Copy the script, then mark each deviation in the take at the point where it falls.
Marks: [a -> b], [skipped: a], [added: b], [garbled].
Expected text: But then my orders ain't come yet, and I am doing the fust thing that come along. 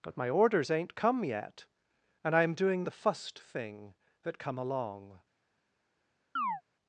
But [skipped: then] my orders ain't come yet, and I am doing the fust thing that come along.